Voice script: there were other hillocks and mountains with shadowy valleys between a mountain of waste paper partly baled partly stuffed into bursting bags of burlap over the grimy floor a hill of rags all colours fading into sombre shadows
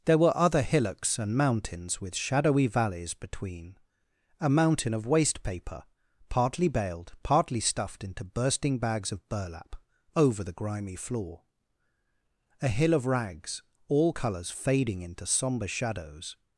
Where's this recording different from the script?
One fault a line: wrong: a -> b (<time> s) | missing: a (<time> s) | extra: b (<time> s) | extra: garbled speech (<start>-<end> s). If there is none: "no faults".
no faults